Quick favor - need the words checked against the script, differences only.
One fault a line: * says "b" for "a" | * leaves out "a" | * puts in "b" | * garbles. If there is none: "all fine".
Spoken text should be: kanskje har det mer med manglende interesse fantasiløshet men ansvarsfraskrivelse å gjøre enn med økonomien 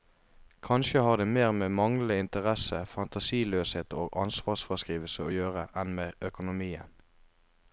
* says "og" for "men"